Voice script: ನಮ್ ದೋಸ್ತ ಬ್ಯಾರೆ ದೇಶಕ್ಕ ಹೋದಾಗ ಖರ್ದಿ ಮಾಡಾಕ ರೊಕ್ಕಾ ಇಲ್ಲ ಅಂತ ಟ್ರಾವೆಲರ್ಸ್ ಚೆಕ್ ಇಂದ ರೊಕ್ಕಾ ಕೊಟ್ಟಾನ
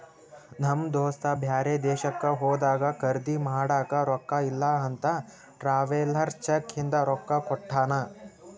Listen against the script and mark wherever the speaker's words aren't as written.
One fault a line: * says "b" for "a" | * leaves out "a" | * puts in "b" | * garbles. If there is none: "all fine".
all fine